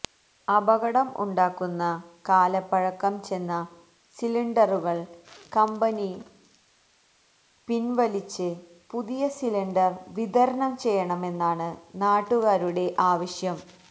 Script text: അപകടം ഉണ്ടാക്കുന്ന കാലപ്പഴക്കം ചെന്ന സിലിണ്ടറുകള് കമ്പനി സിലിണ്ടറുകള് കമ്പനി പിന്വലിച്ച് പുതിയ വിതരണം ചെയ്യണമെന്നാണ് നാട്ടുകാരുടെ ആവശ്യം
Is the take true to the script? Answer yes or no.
no